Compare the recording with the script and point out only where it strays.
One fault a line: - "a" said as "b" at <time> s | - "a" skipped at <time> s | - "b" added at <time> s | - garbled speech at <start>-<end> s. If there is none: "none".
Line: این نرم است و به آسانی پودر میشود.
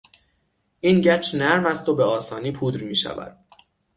- "گچ" added at 1.0 s